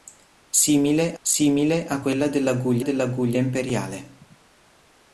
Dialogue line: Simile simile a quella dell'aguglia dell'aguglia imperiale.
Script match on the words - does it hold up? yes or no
yes